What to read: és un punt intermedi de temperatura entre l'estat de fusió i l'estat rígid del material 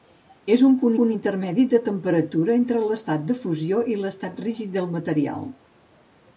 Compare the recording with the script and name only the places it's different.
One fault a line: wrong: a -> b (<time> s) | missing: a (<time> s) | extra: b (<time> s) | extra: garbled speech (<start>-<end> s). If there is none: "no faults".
extra: punt (1.0 s)